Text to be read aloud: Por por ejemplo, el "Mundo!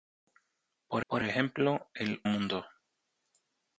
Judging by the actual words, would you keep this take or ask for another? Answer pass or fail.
pass